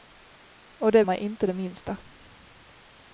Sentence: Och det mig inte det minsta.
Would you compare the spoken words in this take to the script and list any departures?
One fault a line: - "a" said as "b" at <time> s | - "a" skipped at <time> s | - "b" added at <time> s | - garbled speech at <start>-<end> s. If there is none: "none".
none